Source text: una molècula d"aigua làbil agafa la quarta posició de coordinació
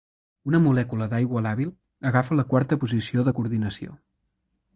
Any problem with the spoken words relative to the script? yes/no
no